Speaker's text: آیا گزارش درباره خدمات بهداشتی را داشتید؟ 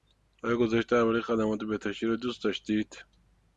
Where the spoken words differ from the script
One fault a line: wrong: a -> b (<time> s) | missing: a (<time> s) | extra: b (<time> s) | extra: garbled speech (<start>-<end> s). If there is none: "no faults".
extra: دوست (2.1 s)